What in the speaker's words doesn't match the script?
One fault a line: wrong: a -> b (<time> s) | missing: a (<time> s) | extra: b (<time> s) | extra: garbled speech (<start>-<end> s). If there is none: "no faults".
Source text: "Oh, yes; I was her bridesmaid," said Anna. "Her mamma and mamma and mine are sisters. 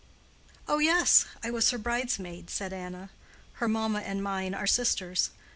missing: mamma and (4.2 s)